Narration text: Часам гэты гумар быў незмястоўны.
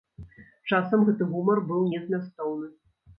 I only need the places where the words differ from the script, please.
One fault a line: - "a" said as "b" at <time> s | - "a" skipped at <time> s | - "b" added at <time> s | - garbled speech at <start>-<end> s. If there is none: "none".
none